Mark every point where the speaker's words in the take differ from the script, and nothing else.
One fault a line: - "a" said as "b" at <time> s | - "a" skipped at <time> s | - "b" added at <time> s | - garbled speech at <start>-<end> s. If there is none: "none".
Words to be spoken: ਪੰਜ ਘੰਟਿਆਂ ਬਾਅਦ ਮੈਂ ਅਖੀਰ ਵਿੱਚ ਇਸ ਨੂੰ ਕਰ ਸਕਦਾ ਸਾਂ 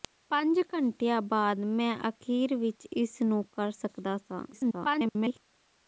- garbled speech at 4.5-5.4 s